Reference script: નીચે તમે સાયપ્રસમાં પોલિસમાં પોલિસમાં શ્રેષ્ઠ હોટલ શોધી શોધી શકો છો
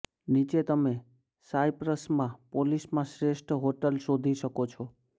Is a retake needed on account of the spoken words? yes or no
yes